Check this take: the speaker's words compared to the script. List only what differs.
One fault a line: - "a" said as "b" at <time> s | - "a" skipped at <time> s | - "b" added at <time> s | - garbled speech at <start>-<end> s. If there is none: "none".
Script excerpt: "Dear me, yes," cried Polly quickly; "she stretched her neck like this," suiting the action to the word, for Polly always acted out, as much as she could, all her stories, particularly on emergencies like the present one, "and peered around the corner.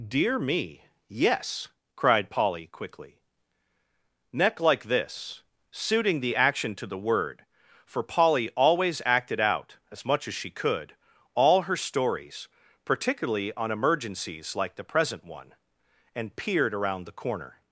- "she stretched her" skipped at 3.2 s